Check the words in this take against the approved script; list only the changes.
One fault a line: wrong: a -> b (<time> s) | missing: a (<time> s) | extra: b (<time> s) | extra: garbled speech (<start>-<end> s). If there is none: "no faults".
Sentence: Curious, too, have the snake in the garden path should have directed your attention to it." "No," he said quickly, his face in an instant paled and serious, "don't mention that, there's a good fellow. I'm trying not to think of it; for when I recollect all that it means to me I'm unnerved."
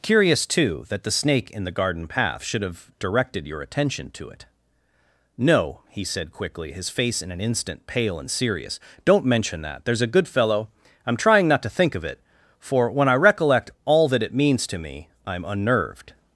wrong: have -> that (0.9 s)
wrong: paled -> pale (7.8 s)